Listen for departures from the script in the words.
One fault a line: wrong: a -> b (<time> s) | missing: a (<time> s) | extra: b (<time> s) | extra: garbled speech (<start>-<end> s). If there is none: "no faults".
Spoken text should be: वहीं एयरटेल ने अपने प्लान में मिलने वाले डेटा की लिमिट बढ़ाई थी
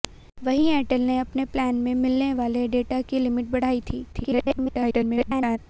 extra: garbled speech (4.1-5.6 s)